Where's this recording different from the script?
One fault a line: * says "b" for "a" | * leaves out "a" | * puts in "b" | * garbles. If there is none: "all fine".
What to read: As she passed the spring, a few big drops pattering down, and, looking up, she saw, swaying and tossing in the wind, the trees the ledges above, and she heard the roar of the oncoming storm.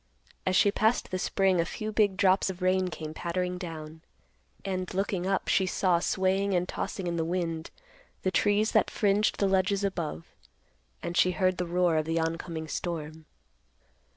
* puts in "of rain came"
* puts in "that fringed"